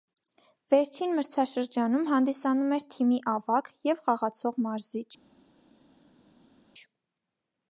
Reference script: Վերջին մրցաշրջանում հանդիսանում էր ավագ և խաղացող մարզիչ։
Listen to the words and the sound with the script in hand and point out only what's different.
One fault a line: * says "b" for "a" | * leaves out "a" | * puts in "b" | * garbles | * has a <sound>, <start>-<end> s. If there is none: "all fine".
* puts in "թիմի"